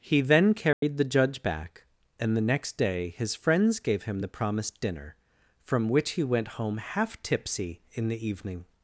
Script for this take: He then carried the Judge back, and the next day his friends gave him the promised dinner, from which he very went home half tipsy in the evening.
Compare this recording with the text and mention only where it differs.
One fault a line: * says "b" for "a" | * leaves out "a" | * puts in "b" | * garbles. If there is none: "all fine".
* leaves out "very"